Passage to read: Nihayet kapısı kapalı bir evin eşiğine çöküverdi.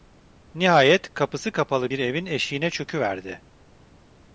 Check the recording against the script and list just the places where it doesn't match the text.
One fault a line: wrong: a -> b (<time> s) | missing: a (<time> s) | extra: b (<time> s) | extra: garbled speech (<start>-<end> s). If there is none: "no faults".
no faults